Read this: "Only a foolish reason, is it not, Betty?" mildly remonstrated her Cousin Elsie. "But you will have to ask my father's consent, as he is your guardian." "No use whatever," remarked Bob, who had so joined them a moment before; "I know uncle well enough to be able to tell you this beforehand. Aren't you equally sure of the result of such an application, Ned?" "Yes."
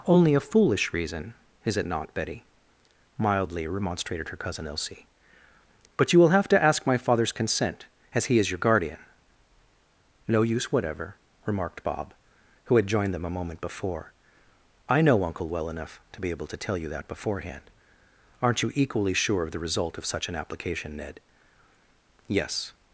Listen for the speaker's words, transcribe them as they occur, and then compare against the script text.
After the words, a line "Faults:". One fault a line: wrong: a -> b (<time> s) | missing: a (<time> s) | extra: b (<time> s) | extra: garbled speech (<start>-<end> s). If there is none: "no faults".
"Only a foolish reason, is it not, Betty?" mildly remonstrated her Cousin Elsie. "But you will have to ask my father's consent, as he is your guardian." "No use whatever," remarked Bob, who had joined them a moment before; "I know uncle well enough to be able to tell you that beforehand. Aren't you equally sure of the result of such an application, Ned?" "Yes."
Faults:
missing: so (12.9 s)
wrong: this -> that (16.9 s)